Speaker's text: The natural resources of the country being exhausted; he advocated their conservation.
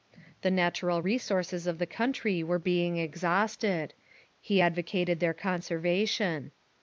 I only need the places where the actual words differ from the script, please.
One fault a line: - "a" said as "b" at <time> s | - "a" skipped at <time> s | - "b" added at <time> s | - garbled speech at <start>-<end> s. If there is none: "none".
- "were" added at 2.4 s